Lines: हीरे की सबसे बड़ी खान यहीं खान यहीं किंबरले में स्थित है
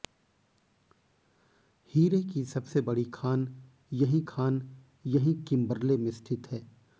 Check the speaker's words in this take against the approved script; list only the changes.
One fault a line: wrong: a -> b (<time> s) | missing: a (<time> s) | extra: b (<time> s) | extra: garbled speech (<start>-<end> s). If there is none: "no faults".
no faults